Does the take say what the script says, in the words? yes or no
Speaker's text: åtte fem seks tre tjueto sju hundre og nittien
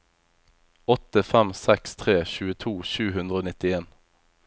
yes